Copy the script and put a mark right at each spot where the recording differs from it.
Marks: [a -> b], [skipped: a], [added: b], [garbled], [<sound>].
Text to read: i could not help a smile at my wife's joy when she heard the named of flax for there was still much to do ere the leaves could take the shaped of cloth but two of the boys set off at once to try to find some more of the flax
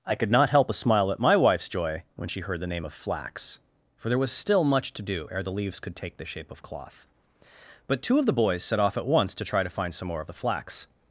i could not help a smile at my wife's joy when she heard the [named -> name] of flax for there was still much to do ere the leaves could take the [shaped -> shape] of cloth but two of the boys set off at once to try to find some more of the flax